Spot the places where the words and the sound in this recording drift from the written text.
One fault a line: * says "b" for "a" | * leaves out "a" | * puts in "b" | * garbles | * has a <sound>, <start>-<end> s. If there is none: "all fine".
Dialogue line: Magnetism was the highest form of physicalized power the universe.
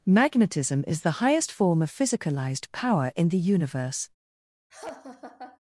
* says "is" for "was"
* puts in "in"
* has a laugh, 4.7-5.6 s